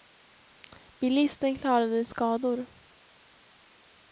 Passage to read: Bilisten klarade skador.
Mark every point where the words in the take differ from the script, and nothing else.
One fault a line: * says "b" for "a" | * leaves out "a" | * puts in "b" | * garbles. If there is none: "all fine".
all fine